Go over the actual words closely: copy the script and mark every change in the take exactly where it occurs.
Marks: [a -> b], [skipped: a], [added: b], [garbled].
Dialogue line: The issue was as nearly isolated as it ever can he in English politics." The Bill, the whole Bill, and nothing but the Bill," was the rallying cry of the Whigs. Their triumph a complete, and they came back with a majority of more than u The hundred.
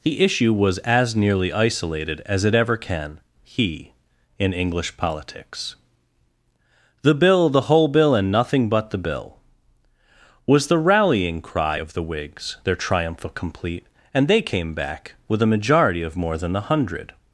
The issue was as nearly isolated as it ever can he in English politics." The Bill, the whole Bill, and nothing but the Bill," was the rallying cry of the Whigs. Their triumph [skipped: a] complete, and they came back with a majority of more than [skipped: u] The hundred.